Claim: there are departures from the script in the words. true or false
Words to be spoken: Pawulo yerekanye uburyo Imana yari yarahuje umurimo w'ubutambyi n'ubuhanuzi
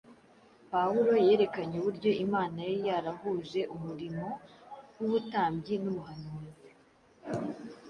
false